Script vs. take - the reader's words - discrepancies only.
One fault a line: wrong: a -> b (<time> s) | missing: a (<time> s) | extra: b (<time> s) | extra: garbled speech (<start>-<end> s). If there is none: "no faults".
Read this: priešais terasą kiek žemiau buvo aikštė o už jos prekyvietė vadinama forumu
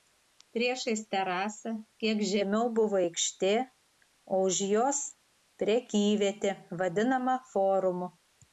no faults